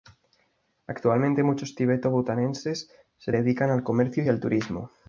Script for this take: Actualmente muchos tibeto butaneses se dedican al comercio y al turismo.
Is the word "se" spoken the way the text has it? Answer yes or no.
yes